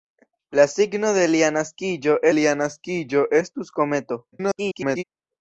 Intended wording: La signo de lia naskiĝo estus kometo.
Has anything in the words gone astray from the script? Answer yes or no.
yes